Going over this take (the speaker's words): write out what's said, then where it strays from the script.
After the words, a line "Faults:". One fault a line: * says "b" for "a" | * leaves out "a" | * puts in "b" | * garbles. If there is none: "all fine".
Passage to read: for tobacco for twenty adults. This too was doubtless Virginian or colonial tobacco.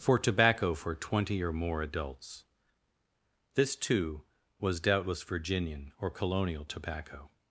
for tobacco for twenty or more adults. This too was doubtless Virginian or colonial tobacco.
Faults:
* puts in "or more"